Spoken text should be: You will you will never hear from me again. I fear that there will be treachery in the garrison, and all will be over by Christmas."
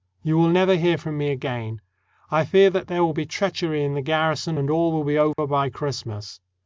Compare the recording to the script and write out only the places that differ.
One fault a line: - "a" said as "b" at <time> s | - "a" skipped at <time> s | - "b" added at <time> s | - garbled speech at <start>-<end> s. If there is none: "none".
- "you will" skipped at 0.5 s